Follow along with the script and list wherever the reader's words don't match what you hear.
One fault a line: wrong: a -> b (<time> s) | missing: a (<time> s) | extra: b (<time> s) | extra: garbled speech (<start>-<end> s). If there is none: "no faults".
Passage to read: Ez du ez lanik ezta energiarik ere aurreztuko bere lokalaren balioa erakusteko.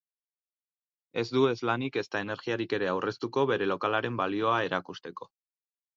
no faults